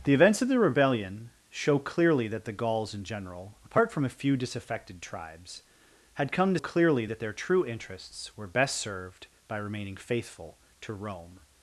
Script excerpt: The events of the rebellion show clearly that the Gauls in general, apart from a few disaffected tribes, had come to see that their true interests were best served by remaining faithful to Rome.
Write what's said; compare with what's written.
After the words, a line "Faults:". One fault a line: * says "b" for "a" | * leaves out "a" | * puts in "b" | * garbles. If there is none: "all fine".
The events of the rebellion show clearly that the Gauls in general, apart from a few disaffected tribes, had come to clearly that their true interests were best served by remaining faithful to Rome.
Faults:
* says "clearly" for "see"